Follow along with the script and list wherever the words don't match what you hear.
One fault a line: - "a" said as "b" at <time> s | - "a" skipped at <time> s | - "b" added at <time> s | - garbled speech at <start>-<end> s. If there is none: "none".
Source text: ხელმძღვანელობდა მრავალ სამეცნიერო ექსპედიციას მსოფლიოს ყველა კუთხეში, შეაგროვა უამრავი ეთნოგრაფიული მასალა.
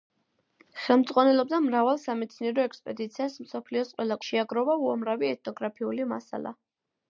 - "კუთხეში" skipped at 4.2 s